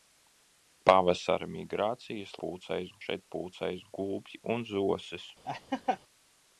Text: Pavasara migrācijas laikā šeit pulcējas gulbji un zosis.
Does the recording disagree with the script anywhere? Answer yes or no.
yes